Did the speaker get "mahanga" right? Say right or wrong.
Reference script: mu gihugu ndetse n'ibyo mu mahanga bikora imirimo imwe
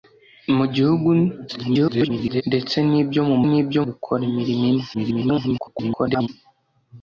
wrong